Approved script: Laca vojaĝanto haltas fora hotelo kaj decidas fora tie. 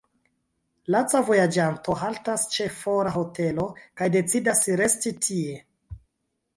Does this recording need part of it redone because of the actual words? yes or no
yes